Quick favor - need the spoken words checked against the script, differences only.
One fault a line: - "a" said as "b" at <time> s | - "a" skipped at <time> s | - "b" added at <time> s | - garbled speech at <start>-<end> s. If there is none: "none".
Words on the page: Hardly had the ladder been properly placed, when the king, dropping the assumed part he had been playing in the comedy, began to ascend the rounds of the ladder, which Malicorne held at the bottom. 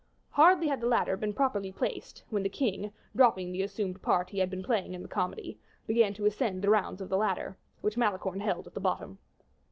none